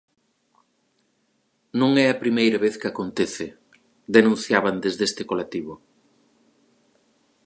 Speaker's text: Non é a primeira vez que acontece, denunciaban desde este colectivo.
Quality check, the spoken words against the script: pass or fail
pass